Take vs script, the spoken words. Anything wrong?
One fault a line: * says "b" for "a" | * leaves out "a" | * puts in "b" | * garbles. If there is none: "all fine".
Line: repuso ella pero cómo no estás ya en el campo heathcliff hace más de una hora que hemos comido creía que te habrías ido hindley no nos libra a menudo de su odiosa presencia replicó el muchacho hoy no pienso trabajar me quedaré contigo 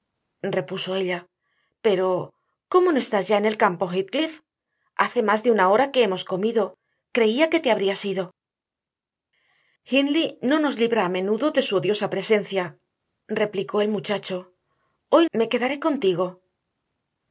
* leaves out "no pienso trabajar"